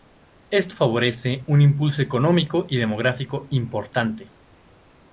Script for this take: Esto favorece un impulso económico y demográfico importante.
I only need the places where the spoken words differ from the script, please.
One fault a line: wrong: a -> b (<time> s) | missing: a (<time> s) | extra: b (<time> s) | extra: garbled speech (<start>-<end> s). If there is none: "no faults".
no faults